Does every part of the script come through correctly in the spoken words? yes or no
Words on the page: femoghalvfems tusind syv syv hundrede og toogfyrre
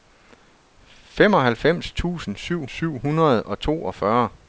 yes